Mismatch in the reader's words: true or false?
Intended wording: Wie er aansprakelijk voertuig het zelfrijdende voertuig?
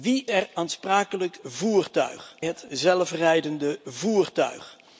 false